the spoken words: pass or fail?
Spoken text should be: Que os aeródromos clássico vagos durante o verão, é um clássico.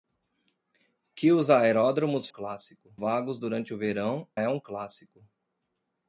pass